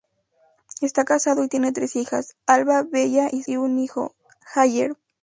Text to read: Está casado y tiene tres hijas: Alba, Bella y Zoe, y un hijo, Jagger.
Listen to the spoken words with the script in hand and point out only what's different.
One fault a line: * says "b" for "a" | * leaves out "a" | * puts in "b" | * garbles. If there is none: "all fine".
* leaves out "Zoe"